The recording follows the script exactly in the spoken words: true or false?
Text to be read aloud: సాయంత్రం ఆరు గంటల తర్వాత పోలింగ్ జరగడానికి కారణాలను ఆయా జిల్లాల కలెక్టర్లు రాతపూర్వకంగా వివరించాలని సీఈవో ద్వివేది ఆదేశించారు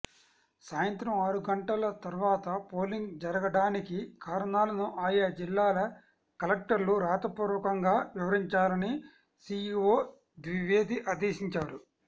true